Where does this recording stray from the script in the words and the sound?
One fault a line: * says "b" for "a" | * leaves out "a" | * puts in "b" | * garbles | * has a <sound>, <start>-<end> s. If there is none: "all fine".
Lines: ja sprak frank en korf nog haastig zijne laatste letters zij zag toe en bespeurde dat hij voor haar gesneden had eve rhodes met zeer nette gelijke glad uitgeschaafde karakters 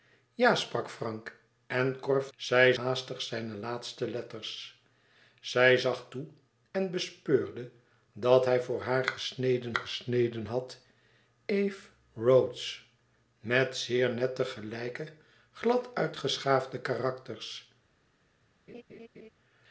* says "zij" for "nog"
* puts in "gesneden"
* has a laugh, 18.7-19.3 s